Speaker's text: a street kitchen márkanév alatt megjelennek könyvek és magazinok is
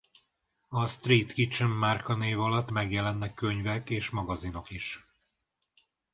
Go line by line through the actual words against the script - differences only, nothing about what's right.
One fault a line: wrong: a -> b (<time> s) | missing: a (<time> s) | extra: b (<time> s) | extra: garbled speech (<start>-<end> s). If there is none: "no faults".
no faults